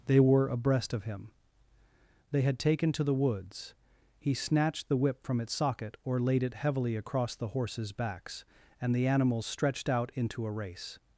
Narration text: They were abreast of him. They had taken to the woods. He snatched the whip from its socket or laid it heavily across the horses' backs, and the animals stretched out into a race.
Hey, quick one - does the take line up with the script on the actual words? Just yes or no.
yes